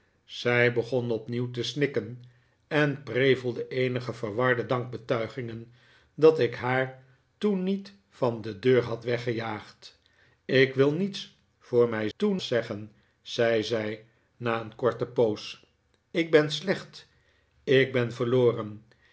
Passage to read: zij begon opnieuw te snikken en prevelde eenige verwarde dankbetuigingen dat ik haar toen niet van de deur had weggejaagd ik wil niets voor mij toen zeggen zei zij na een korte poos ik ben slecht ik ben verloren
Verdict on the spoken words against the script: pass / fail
pass